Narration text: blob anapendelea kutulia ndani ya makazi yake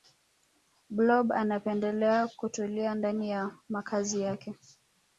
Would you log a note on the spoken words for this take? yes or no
no